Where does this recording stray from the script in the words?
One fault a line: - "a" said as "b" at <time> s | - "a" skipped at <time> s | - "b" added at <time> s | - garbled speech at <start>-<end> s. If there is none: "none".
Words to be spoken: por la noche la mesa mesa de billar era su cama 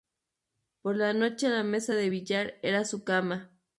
- "mesa" skipped at 1.9 s